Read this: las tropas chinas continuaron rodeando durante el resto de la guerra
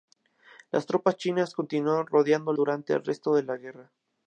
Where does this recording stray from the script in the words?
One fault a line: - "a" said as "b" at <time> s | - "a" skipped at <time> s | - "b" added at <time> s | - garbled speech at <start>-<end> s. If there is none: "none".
none